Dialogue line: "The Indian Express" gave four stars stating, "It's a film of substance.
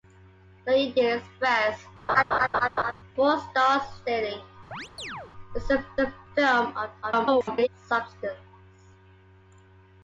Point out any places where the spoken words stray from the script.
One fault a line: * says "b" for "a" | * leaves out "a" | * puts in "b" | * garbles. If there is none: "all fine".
* leaves out "gave"
* puts in "a"
* garbles